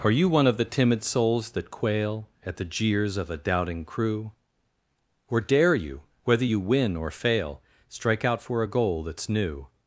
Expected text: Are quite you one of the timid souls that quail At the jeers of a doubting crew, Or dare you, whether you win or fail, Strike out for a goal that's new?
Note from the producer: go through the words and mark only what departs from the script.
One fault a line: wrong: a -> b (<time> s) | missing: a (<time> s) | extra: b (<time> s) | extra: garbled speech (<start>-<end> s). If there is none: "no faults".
missing: quite (0.1 s)